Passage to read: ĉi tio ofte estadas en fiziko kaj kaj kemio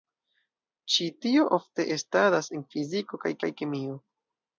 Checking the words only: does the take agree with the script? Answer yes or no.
yes